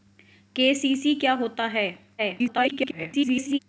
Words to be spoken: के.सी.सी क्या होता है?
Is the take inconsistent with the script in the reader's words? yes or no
yes